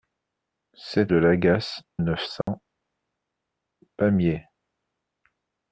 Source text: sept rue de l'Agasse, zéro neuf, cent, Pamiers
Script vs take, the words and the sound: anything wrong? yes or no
yes